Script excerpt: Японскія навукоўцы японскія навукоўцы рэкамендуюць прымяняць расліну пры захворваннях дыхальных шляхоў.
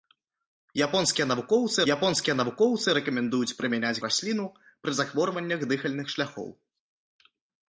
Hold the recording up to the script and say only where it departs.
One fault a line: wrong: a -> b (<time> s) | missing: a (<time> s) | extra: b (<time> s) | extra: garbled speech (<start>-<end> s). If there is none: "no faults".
no faults